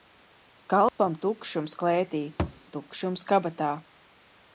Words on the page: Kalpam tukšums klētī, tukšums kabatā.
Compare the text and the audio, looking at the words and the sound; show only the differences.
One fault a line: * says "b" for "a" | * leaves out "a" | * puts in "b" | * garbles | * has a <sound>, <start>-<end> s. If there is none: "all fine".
* has a dropout, 0.9-1.0 s
* has a thud, 2.4-2.6 s